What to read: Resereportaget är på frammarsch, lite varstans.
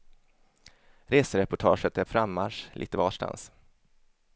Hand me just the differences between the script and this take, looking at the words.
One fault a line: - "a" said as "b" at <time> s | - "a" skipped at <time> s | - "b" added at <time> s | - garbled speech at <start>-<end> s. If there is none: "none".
- "på" skipped at 2.0 s